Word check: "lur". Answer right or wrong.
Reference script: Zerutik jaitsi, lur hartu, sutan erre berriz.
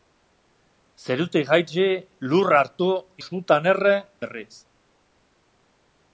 right